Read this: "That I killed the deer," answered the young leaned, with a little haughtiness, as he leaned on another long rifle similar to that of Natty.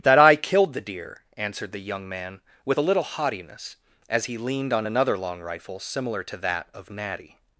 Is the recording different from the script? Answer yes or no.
yes